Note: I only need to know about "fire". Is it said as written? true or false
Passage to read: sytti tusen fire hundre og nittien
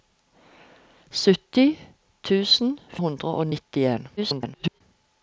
false